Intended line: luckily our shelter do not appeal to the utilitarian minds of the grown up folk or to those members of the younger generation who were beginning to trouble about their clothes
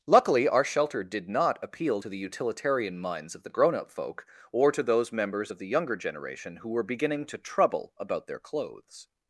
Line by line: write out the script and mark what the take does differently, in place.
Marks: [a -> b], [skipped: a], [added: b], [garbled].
luckily our shelter [do -> did] not appeal to the utilitarian minds of the grown up folk or to those members of the younger generation who were beginning to trouble about their clothes